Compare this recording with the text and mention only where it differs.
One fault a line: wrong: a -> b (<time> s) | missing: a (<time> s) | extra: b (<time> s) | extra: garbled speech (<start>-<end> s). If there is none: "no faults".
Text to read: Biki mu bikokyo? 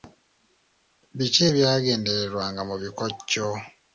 extra: ebyagendererwanga (1.5 s)